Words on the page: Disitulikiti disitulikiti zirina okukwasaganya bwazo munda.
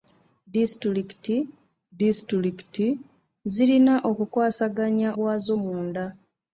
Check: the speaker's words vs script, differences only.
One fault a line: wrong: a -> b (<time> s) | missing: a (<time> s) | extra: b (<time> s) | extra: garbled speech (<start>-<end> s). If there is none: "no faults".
no faults